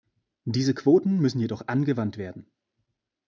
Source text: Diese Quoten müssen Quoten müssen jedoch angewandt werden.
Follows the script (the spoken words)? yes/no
no